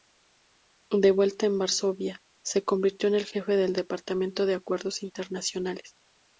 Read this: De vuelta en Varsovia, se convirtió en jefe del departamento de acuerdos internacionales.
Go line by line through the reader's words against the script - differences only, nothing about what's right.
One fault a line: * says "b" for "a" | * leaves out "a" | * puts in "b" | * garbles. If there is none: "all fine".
* puts in "el"